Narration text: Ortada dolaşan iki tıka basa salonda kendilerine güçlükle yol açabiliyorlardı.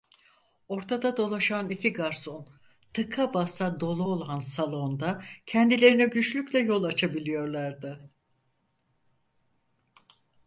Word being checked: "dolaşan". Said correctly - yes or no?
yes